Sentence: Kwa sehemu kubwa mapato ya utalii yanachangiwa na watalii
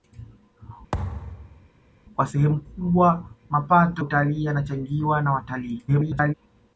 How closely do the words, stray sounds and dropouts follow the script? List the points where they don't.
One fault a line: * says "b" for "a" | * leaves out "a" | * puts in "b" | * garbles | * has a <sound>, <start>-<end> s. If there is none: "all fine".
* has a thud, 0.9-1.7 s
* leaves out "ya"
* garbles